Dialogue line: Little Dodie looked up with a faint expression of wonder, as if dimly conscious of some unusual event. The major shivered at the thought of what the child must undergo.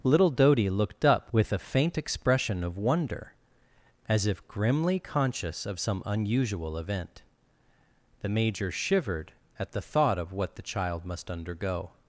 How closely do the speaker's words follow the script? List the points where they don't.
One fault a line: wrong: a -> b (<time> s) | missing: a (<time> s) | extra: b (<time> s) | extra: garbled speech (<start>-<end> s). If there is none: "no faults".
wrong: dimly -> grimly (4.5 s)